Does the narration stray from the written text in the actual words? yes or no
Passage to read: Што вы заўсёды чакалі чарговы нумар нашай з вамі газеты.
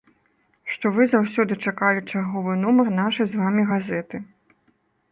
no